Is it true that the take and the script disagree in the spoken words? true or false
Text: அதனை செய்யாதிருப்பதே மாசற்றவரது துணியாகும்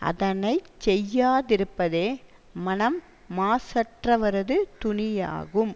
true